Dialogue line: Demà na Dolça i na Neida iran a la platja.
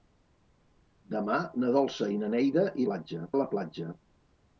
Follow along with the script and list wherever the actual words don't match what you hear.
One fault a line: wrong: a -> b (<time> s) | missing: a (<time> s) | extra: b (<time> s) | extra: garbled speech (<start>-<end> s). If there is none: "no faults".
wrong: iran -> platja (2.9 s)